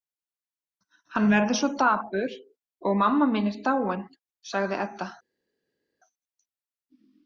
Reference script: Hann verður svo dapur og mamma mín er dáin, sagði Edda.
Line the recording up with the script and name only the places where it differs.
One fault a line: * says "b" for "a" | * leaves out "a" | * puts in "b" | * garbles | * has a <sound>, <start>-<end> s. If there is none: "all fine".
all fine